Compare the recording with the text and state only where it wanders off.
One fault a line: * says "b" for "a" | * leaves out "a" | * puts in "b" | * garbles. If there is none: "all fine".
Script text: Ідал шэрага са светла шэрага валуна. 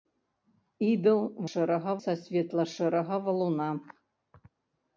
all fine